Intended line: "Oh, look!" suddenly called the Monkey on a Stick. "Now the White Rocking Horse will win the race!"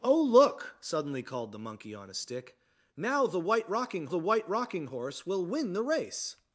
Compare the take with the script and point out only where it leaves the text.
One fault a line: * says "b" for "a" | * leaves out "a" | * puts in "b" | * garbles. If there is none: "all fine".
* puts in "the White Rocking"